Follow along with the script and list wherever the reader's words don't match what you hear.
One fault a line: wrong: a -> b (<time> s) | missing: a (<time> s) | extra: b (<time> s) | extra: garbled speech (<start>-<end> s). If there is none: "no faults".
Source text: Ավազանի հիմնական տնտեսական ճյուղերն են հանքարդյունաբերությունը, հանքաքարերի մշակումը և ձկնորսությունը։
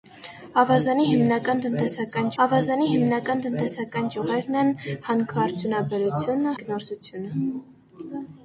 extra: ավազանի հիմնական տնտեսական (2.4 s)
missing: հանքաքարերի մշակումը և (6.5 s)